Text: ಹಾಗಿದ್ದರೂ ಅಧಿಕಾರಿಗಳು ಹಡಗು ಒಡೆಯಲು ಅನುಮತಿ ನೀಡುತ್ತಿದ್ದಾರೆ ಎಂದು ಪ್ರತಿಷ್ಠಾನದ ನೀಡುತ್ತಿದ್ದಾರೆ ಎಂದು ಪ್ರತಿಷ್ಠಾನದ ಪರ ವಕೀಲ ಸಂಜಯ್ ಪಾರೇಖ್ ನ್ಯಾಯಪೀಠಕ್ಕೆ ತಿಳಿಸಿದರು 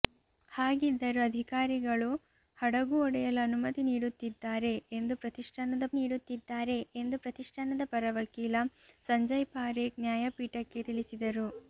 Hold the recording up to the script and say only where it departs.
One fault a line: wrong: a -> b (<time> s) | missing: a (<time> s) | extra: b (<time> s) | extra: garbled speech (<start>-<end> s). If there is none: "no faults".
no faults